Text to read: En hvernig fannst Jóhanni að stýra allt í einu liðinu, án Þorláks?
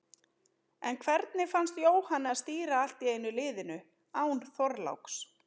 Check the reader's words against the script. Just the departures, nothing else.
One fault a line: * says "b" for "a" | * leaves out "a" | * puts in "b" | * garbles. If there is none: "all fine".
all fine